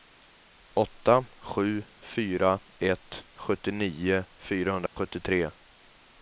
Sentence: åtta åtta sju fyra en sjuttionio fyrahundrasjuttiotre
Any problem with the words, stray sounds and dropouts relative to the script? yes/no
yes